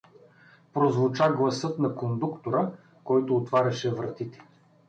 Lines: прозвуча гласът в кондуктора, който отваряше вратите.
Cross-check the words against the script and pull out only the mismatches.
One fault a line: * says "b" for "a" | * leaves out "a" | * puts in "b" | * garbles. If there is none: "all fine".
* says "на" for "в"